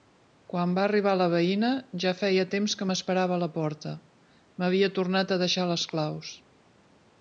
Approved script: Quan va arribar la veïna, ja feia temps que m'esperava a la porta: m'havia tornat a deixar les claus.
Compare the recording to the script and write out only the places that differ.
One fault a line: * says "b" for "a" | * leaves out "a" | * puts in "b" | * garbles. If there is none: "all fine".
all fine